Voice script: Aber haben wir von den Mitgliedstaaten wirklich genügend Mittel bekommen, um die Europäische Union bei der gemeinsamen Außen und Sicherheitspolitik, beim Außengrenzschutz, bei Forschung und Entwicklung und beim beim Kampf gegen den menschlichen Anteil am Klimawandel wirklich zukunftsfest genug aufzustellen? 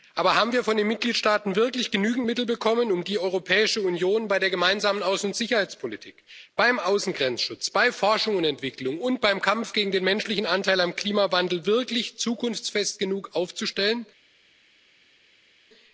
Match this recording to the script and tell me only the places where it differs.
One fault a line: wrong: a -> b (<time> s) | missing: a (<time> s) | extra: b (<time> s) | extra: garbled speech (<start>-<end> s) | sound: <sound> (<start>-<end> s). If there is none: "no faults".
missing: beim (9.4 s)